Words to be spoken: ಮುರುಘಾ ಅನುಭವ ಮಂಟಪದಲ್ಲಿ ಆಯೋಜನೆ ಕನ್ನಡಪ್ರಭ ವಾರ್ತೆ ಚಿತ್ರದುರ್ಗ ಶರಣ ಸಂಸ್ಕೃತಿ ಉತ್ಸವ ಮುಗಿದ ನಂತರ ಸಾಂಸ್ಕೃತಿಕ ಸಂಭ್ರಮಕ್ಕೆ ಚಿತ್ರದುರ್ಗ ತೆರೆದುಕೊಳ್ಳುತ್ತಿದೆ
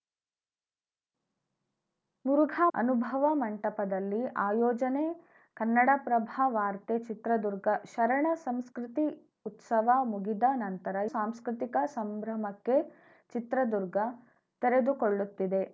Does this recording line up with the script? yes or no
yes